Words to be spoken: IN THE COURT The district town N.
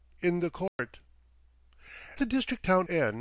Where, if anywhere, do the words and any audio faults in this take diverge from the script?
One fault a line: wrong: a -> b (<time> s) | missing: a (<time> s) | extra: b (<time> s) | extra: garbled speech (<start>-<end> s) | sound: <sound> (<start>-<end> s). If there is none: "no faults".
sound: dropout (0.7-0.8 s)